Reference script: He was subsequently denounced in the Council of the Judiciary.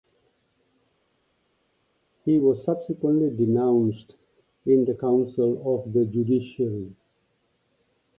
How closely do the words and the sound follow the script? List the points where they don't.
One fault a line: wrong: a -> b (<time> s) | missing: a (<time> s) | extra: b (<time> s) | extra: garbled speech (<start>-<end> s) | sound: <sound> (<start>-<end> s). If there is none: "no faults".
no faults